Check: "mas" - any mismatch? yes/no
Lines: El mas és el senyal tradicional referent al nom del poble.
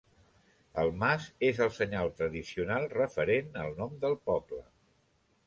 no